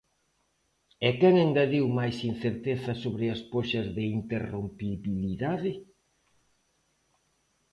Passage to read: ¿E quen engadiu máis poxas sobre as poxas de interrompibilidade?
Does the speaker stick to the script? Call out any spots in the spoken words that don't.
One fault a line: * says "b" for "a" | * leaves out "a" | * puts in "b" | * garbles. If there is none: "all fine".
* says "incerteza" for "poxas"